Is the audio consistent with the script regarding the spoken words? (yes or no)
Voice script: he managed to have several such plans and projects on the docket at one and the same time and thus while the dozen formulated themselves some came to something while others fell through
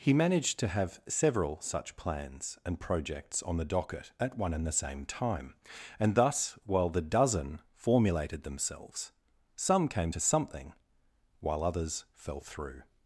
yes